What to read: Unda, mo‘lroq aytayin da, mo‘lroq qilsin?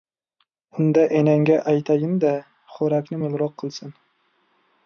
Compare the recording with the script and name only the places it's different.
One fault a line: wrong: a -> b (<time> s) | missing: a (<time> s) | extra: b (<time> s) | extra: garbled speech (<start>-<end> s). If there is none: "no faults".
wrong: mo‘lroq -> enangga (1.2 s)
extra: xo‘rakni (2.8 s)